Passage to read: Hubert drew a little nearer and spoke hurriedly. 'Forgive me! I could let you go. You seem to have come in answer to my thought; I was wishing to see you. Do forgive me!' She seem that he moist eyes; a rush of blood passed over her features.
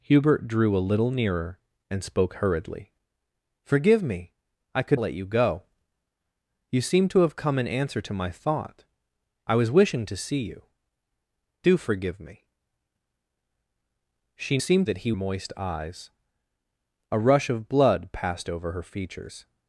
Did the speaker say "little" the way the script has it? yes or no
yes